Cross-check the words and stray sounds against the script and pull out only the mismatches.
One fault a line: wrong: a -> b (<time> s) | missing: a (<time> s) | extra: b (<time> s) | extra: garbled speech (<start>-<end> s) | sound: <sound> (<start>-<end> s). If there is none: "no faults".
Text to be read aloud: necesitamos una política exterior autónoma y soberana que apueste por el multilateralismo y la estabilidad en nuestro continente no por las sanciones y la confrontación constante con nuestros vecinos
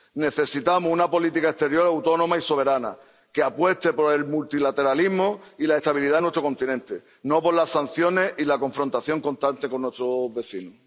no faults